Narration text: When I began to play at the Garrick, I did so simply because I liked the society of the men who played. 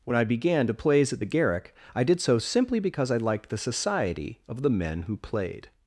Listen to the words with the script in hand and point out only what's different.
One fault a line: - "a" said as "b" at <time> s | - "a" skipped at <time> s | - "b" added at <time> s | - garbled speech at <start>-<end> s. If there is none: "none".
- "play" said as "plays" at 0.7 s